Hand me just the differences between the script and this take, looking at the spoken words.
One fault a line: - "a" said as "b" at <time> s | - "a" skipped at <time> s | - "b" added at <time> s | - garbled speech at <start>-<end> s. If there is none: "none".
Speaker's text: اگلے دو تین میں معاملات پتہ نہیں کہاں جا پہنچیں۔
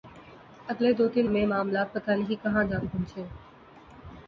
none